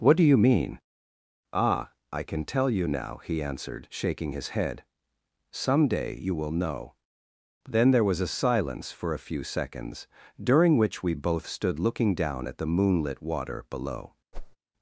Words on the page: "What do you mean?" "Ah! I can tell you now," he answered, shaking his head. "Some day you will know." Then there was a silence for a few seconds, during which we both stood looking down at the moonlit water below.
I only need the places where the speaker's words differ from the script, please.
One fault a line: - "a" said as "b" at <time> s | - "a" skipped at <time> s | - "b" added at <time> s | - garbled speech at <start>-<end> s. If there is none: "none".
none